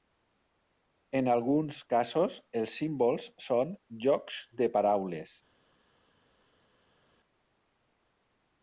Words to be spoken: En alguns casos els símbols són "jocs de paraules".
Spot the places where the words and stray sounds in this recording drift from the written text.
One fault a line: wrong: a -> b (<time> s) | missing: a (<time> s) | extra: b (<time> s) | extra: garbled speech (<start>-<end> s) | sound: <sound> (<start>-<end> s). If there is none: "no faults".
no faults